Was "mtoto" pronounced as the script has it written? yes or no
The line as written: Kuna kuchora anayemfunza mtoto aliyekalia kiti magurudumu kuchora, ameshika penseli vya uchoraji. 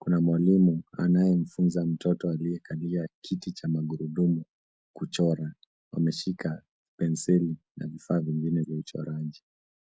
yes